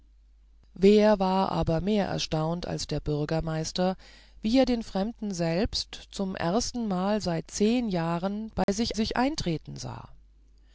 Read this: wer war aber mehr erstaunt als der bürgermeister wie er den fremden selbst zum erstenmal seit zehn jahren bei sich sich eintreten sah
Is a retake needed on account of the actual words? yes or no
no